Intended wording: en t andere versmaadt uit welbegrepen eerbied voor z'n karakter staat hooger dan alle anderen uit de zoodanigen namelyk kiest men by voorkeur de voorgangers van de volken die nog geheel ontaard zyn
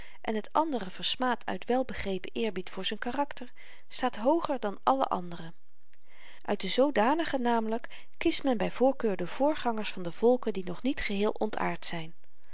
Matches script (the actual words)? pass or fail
fail